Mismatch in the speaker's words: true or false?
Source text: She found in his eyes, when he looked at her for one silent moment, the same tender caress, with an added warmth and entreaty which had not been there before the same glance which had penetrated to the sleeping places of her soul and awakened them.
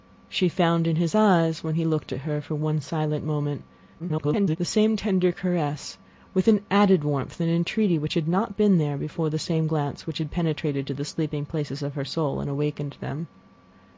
true